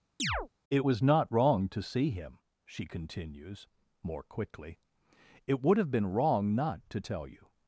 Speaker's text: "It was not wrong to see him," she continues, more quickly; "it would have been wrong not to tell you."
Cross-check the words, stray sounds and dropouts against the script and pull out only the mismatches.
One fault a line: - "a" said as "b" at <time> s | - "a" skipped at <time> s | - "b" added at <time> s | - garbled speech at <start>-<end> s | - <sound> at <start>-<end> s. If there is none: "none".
- chirp at 0.2-0.5 s